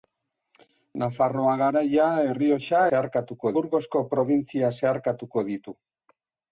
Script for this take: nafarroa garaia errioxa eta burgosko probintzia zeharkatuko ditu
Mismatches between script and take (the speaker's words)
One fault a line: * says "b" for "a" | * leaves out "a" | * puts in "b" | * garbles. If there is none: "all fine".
* says "zeharkatuko" for "eta"